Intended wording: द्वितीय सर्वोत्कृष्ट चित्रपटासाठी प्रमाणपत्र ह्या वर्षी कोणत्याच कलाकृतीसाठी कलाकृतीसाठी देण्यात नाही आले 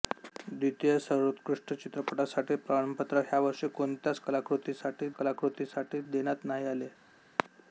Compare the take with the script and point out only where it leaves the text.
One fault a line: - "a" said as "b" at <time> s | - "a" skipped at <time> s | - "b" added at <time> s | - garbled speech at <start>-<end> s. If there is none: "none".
none